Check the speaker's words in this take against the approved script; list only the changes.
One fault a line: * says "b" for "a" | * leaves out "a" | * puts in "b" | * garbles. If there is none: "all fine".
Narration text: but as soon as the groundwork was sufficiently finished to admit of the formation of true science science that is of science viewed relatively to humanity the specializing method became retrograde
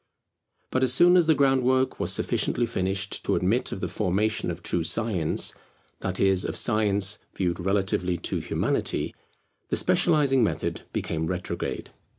* leaves out "science"